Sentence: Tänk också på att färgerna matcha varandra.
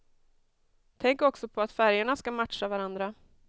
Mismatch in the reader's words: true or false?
true